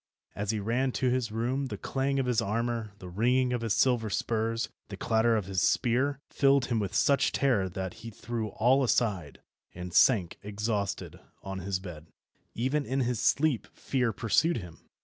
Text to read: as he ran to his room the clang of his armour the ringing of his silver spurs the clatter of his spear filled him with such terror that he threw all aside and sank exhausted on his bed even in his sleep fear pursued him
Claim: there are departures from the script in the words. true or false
false